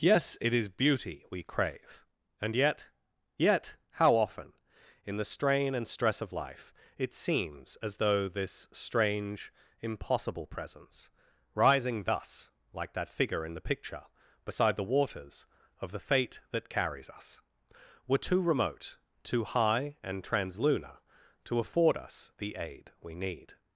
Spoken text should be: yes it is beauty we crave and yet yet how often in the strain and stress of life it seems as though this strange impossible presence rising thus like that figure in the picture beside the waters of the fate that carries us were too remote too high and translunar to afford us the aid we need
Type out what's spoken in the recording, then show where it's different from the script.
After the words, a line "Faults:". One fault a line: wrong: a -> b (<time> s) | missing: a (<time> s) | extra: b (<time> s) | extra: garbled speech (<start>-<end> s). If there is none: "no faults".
yes it is beauty we crave and yet yet how often in the strain and stress of life it seems as though this strange impossible presence rising thus like that figure in the picture beside the waters of the fate that carries us were too remote too high and translunar to afford us the aid we need
Faults:
no faults